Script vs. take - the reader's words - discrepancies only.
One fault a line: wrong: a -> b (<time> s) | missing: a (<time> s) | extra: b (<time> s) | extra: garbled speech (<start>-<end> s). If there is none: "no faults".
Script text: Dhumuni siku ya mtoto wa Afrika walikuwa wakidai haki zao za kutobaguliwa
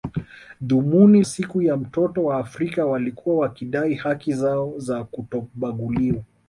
no faults